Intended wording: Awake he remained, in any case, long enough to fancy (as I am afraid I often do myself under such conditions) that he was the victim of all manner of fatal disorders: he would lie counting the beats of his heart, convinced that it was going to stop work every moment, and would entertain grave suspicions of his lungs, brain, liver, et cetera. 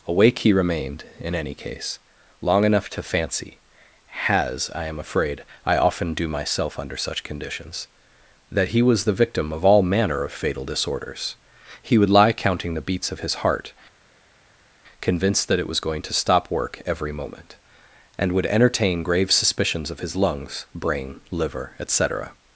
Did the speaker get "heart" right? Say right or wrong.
right